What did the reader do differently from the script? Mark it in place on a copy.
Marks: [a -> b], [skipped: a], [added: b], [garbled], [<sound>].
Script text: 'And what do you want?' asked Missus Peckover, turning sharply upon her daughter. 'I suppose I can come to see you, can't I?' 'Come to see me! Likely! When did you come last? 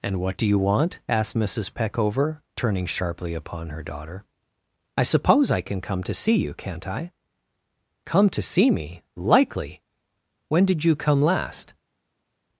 'And what do you want?' asked Missus Peckover, turning sharply upon her daughter. 'I suppose I can come to see you, can't I?' 'Come to see me! Likely! When did you come last?